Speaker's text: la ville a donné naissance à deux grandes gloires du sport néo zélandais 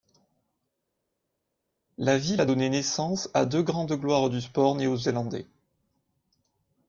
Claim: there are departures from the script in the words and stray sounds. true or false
false